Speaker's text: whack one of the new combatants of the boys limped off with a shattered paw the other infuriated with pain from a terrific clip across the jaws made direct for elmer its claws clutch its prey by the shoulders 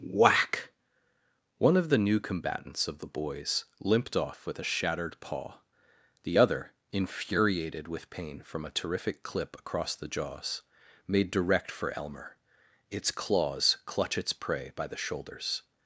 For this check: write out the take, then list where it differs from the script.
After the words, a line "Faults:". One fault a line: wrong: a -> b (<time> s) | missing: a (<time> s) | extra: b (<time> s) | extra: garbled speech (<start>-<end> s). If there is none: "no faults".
whack one of the new combatants of the boys limped off with a shattered paw the other infuriated with pain from a terrific clip across the jaws made direct for elmer its claws clutch its prey by the shoulders
Faults:
no faults